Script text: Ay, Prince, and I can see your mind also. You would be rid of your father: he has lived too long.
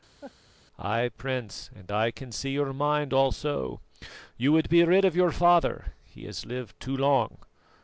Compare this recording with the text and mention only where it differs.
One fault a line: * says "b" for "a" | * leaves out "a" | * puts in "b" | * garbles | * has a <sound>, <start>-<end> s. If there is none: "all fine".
* has a laugh, 0.2-0.3 s